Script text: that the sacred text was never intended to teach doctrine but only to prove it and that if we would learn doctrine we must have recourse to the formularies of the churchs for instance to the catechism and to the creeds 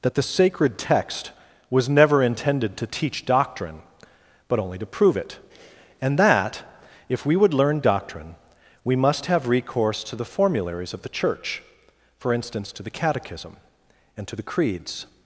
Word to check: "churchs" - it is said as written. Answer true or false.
false